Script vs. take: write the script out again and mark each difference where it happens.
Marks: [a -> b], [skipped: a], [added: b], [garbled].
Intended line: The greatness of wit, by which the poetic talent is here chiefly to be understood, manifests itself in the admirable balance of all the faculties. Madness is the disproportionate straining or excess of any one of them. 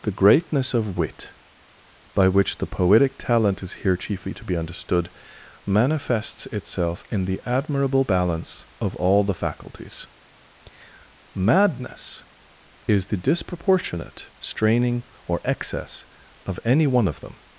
The greatness of wit, by which the poetic talent is here chiefly to be understood, manifests itself in the admirable balance of all the faculties. Madness is the disproportionate straining or excess of any one of them.